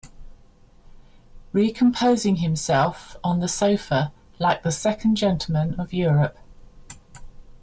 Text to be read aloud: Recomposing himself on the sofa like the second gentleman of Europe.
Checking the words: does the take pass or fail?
pass